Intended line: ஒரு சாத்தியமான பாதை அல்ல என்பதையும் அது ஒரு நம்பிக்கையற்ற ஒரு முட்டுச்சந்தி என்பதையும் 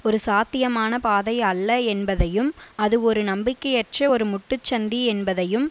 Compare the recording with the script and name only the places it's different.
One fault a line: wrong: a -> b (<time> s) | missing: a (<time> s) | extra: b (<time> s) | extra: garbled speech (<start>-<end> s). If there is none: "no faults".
no faults